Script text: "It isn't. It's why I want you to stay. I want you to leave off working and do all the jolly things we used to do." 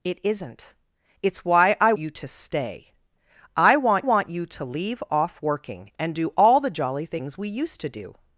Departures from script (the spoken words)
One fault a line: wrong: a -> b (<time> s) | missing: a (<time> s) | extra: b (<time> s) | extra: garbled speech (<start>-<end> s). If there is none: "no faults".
missing: want (1.9 s)
extra: want (4.0 s)